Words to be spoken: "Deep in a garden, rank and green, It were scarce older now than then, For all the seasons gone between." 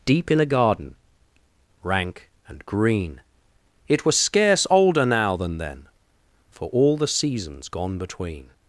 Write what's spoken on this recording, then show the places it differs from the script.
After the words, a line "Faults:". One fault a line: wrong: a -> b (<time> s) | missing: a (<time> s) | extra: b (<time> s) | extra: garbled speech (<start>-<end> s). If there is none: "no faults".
"Deep in a garden, rank and green, It was scarce older now than then, For all the seasons gone between."
Faults:
wrong: were -> was (4.1 s)